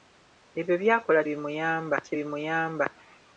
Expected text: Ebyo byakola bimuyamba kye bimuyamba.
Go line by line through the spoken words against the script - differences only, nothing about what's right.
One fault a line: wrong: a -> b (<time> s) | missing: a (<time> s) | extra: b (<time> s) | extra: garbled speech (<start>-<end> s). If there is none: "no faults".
no faults